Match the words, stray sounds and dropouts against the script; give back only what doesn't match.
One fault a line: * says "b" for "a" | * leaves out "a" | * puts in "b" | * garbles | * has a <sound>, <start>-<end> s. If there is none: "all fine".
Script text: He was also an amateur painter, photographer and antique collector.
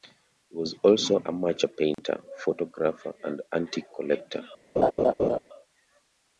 * leaves out "an"
* has a dropout, 1.9-2.0 s
* has a laugh, 4.8-5.4 s